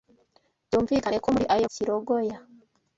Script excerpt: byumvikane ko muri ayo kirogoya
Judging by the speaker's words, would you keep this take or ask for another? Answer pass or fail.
pass